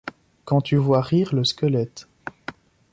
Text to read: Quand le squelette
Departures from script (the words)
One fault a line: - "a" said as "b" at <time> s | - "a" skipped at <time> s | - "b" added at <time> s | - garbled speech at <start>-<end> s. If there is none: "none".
- "tu vois rire" added at 0.6 s